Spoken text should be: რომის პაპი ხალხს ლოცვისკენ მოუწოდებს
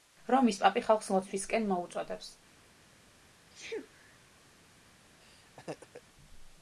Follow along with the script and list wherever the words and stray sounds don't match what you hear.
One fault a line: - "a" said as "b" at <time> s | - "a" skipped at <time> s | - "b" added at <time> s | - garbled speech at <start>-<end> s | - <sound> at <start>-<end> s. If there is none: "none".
- sneeze at 3.5-4.2 s
- laugh at 5.2-6.0 s